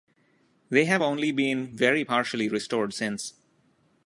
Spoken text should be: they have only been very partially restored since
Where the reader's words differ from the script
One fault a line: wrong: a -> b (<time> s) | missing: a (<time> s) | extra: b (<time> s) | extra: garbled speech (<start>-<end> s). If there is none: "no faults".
no faults